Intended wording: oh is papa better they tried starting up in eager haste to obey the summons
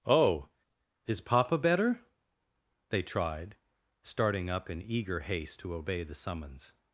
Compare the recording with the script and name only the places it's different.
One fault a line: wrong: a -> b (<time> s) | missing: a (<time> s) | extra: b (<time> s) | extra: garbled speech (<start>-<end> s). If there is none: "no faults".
no faults